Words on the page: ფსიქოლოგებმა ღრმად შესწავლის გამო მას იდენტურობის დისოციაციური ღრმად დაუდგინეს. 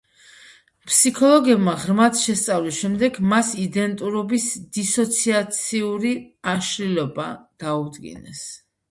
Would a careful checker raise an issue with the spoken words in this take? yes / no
yes